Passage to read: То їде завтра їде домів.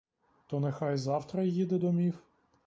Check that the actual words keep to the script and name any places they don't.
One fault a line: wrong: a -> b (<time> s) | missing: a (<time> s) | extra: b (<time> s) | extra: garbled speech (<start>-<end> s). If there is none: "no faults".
wrong: їде -> нехай (0.6 s)